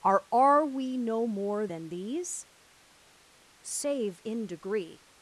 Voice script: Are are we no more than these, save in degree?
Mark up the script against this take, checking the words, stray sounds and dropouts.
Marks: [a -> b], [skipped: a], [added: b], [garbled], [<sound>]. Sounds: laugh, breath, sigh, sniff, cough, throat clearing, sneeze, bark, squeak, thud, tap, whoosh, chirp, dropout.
Are are we no more than these, save in degree?